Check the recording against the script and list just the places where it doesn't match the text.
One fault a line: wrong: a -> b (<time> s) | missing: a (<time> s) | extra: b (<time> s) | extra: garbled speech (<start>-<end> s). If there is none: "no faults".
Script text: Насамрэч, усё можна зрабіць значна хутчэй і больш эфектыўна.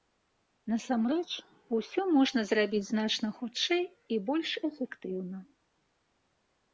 no faults